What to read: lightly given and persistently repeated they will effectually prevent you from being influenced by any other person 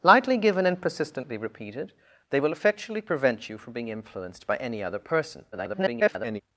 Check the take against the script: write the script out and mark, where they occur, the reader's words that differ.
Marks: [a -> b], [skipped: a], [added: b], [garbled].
lightly given and persistently repeated they will effectually prevent you from being influenced by any other person [garbled]